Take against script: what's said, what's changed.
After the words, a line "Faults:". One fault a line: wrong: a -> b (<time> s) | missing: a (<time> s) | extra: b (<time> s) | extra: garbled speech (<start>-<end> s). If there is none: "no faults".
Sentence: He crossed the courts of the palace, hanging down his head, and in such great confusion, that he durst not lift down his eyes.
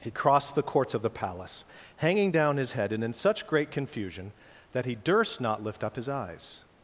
He crossed the courts of the palace, hanging down his head, and in such great confusion, that he durst not lift up his eyes.
Faults:
wrong: down -> up (5.8 s)